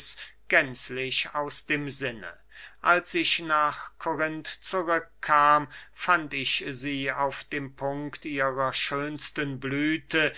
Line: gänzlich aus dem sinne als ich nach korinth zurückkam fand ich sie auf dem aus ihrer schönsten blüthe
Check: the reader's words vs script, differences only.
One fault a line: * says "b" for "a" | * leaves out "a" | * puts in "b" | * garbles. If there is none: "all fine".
* says "punkt" for "aus"